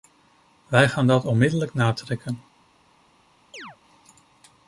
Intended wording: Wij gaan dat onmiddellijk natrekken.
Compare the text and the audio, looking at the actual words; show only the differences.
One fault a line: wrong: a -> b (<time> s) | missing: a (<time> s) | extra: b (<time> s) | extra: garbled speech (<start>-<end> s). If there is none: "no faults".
no faults